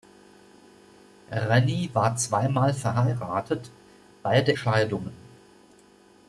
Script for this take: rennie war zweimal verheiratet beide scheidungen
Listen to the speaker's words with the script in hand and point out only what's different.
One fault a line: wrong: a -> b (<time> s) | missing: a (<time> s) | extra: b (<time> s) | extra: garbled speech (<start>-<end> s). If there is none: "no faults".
no faults